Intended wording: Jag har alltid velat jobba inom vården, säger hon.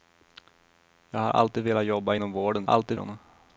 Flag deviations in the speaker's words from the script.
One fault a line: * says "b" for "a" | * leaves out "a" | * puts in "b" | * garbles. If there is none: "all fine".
* says "alltid" for "säger"